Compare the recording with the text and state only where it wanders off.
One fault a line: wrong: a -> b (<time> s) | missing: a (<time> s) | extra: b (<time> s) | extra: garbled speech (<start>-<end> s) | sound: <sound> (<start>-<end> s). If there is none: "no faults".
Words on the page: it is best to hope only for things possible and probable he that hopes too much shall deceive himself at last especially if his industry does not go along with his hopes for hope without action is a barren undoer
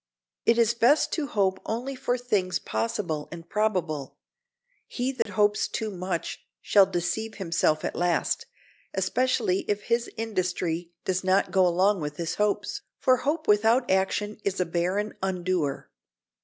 sound: dropout (5.2-5.3 s)